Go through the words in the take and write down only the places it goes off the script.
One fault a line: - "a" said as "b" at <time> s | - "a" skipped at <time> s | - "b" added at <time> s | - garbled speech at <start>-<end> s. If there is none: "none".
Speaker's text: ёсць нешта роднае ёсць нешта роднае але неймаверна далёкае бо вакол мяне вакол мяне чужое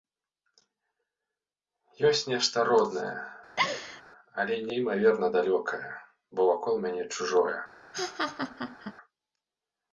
- "ёсць нешта роднае" skipped at 3.1 s
- "вакол мяне" skipped at 7.0 s